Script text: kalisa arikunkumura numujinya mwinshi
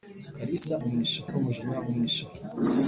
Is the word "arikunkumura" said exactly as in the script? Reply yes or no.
no